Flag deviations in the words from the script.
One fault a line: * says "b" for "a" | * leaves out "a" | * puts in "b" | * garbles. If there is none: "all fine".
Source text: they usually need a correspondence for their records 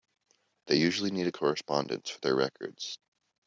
all fine